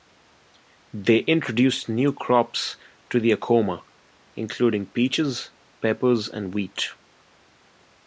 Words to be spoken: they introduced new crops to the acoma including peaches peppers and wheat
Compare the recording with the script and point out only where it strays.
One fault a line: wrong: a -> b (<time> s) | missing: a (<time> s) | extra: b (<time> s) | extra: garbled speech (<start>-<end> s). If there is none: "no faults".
no faults